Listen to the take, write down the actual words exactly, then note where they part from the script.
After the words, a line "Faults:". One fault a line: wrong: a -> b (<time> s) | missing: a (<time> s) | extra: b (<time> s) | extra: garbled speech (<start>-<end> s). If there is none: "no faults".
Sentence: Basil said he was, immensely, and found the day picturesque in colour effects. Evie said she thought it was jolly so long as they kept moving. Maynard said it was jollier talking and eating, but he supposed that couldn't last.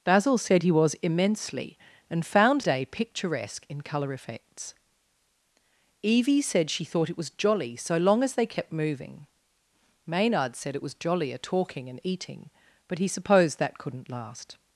Basil said he was, immensely, and found day picturesque in colour effects. Evie said she thought it was jolly so long as they kept moving. Maynard said it was jollier talking and eating, but he supposed that couldn't last.
Faults:
missing: the (2.6 s)